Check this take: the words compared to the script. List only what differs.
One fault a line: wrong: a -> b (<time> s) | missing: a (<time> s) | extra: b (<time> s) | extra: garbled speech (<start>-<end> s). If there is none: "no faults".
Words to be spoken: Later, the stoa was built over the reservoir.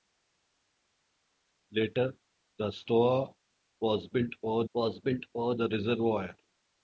extra: was built over (4.7 s)